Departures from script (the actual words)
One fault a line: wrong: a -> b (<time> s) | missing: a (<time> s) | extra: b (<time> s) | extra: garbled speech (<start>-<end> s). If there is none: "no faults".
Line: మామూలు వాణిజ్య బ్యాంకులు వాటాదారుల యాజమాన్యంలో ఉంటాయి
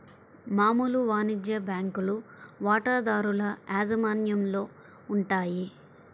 no faults